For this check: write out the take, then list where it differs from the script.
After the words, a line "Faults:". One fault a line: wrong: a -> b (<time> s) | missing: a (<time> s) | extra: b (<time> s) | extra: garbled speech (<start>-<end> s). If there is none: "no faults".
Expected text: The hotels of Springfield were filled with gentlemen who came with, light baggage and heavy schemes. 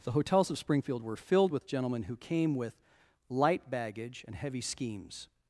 The hotels of Springfield were filled with gentlemen who came with, light baggage and heavy schemes.
Faults:
no faults